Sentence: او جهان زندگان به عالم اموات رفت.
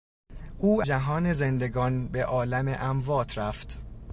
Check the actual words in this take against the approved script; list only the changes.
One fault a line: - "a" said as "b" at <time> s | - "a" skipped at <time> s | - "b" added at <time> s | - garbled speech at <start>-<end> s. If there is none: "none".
none